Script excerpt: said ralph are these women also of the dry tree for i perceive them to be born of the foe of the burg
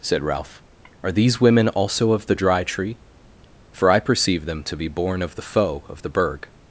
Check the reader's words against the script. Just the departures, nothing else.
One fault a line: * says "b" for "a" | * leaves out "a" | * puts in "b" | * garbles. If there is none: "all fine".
all fine